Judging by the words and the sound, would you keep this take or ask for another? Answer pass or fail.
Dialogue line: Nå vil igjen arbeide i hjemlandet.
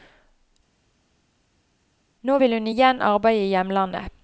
fail